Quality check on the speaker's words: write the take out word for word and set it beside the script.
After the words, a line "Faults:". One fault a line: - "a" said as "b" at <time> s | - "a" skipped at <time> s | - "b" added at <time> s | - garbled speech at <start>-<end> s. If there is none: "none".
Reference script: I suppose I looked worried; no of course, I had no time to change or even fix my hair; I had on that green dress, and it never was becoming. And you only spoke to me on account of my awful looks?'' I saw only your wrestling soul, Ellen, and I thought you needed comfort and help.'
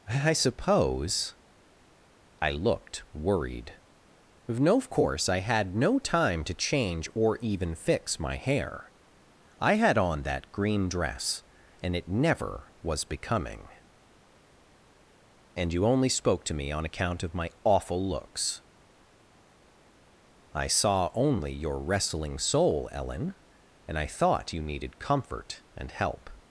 I suppose I looked worried; no of course, I had no time to change or even fix my hair; I had on that green dress, and it never was becoming. And you only spoke to me on account of my awful looks?'' I saw only your wrestling soul, Ellen, and I thought you needed comfort and help.'
Faults:
none